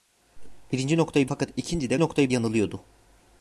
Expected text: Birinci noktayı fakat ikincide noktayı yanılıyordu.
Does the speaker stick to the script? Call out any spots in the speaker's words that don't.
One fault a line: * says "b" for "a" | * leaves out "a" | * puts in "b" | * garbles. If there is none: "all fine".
all fine